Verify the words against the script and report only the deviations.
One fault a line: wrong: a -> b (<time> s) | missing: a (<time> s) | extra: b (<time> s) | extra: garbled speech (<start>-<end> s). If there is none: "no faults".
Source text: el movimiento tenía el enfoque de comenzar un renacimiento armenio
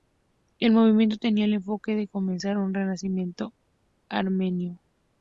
no faults